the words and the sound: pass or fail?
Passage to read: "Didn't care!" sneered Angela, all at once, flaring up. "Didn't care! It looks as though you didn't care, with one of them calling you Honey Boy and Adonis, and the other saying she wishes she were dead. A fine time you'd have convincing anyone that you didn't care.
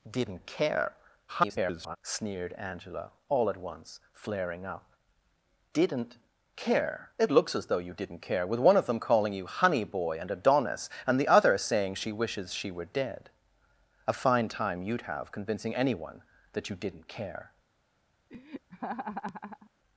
fail